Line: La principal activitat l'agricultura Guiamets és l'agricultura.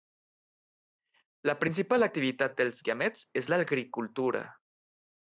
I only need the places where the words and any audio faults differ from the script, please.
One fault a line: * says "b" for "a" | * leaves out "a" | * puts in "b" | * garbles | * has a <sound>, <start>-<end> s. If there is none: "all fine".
* says "dels" for "l'agricultura"